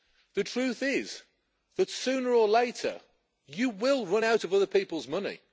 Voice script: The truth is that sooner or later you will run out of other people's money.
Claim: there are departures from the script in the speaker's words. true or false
false